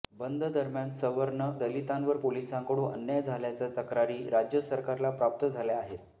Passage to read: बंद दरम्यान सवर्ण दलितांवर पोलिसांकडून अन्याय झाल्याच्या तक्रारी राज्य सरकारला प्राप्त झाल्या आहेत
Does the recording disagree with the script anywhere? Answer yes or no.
no